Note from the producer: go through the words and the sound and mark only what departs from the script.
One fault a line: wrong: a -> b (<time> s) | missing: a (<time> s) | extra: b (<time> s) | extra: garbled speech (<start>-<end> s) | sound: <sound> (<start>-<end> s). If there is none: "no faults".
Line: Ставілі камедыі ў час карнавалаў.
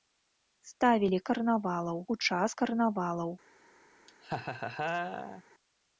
wrong: камедыі -> карнавалаў (1.3 s)
sound: laugh (4.1-5.4 s)